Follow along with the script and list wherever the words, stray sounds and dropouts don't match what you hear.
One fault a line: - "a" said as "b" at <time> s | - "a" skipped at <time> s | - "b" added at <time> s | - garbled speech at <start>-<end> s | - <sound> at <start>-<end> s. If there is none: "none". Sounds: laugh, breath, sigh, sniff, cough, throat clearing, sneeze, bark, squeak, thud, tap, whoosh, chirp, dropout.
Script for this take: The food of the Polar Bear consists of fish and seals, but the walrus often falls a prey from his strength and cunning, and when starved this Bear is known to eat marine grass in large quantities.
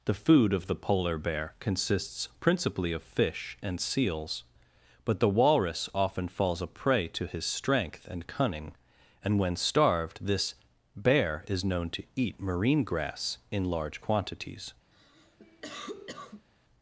- "principally" added at 2.4 s
- "from" said as "to" at 7.1 s
- cough at 14.9-16.5 s